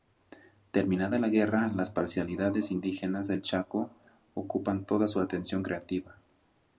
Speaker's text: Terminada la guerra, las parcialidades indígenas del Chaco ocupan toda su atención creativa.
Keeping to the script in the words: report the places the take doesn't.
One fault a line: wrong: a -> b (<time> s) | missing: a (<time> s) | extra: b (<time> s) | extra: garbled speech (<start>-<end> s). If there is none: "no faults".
no faults